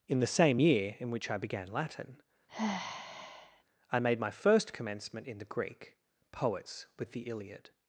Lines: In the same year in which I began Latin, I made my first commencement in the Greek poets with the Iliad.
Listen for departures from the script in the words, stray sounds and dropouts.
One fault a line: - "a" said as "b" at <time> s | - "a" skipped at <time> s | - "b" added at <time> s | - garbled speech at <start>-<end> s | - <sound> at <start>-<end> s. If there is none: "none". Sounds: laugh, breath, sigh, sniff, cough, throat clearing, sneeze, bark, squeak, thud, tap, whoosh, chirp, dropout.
- sigh at 2.5-3.6 s